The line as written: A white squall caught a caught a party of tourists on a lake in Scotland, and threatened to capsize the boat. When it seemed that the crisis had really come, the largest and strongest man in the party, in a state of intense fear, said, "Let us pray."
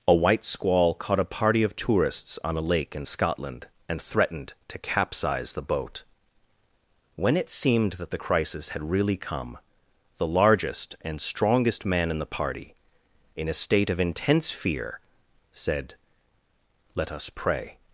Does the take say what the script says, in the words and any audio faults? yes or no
no